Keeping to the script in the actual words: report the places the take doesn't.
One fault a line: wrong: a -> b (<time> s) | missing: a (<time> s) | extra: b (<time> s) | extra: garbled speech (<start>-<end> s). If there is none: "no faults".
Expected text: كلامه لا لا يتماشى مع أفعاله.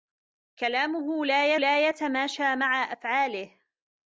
no faults